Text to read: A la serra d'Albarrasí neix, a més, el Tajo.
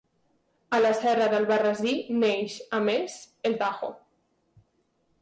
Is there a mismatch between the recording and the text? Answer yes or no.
no